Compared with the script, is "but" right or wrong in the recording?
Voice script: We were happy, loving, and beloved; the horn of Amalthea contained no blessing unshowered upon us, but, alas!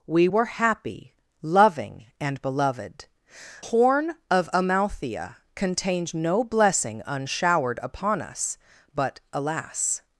right